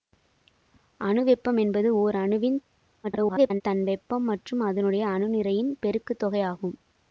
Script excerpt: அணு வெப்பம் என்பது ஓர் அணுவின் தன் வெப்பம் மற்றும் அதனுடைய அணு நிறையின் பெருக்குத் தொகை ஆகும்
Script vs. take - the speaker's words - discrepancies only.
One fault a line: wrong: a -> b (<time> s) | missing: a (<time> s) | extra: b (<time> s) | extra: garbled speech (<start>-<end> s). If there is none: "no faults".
extra: garbled speech (3.0-3.6 s)